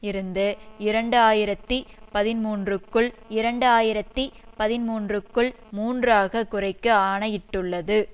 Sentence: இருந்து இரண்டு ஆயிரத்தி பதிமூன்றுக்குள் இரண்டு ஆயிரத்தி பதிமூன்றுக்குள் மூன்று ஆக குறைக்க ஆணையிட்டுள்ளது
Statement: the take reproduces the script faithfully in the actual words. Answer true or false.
true